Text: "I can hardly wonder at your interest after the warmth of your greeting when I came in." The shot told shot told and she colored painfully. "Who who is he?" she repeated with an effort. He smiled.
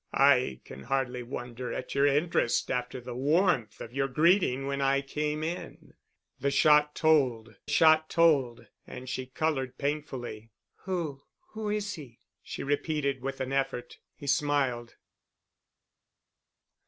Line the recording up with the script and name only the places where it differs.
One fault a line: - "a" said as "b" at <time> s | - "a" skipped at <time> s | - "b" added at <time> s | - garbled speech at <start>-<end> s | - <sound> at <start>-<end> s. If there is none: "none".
none